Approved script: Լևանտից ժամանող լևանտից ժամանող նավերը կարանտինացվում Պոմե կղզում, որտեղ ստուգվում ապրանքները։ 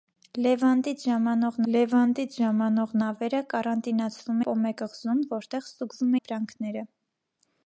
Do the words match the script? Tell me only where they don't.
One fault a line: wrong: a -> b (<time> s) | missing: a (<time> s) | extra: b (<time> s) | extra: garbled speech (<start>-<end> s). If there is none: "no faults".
no faults